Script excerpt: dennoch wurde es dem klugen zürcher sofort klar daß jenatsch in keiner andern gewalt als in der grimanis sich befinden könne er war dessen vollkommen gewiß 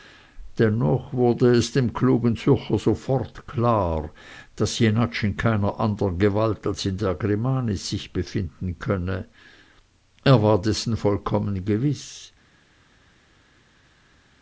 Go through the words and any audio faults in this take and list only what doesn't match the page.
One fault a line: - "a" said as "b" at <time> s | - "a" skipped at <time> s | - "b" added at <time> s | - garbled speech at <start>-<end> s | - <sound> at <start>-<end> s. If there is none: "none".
none